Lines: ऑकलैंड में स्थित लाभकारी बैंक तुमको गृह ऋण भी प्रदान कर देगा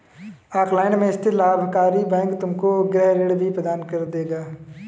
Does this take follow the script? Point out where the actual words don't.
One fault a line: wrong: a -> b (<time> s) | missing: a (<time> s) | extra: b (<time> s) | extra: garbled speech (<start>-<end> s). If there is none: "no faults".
no faults